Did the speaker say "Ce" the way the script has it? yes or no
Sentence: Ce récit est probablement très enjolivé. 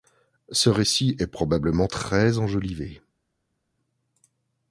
yes